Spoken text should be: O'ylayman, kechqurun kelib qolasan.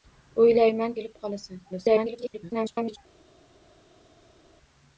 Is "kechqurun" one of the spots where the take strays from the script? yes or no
yes